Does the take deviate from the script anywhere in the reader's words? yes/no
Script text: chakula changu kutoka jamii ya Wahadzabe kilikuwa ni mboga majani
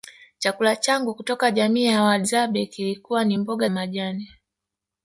no